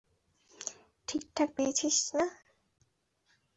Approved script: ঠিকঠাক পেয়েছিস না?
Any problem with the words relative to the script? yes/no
no